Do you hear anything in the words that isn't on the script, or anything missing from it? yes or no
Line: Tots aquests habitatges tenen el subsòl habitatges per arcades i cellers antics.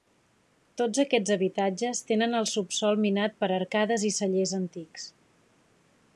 yes